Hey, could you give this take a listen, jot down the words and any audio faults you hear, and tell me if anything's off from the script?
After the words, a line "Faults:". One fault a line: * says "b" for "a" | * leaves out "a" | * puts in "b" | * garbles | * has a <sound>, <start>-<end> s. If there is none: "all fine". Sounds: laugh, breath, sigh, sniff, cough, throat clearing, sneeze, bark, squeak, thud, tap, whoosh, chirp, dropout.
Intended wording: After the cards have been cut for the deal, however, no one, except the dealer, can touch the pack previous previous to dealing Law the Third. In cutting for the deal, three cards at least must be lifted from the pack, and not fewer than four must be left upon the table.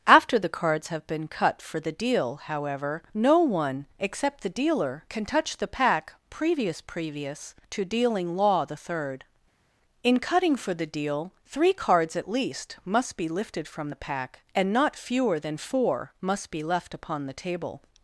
After the cards have been cut for the deal, however, no one, except the dealer, can touch the pack previous previous to dealing Law the Third. In cutting for the deal, three cards at least must be lifted from the pack, and not fewer than four must be left upon the table.
Faults:
all fine